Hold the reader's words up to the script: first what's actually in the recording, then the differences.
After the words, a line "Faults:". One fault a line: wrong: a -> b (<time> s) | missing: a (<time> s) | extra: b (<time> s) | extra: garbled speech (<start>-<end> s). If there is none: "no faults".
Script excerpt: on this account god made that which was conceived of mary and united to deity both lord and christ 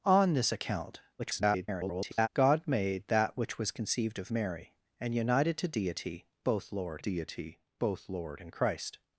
on this account [garbled] god made that which was conceived of mary and united to deity both lord deity both lord and christ
Faults:
extra: garbled speech (1.2-2.3 s)
extra: deity both lord (7.0 s)